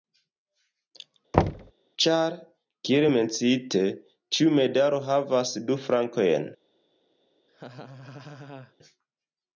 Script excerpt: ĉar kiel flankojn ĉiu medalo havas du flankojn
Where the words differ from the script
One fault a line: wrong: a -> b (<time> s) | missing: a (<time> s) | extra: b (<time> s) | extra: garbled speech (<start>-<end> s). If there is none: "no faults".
wrong: flankojn -> menciite (3.1 s)